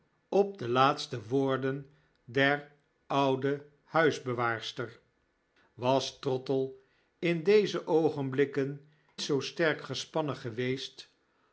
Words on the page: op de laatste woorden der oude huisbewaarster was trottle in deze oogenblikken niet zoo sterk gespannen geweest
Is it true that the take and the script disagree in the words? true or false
true